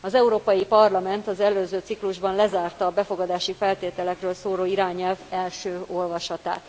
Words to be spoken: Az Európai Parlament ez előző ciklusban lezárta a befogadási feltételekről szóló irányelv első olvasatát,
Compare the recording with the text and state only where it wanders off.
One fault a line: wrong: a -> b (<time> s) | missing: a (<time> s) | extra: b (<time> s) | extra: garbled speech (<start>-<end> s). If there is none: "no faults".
wrong: ez -> az (1.3 s)